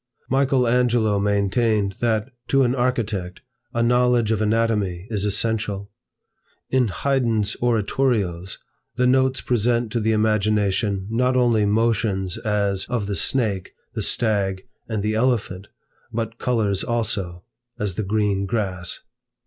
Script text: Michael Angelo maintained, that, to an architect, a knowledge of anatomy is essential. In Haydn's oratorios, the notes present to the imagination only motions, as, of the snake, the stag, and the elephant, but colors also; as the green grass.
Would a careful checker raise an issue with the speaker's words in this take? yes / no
yes